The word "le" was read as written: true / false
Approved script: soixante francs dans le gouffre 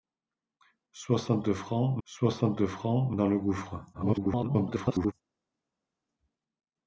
true